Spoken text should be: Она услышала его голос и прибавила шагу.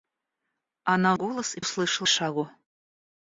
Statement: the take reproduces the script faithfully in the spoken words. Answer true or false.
false